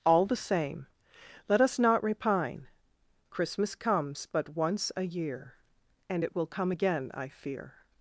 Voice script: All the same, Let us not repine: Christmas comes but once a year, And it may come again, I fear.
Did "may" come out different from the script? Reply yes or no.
yes